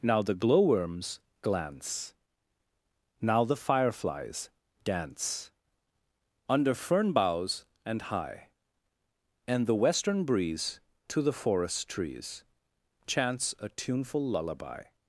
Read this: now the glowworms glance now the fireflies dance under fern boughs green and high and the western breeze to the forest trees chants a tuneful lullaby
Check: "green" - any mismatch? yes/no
yes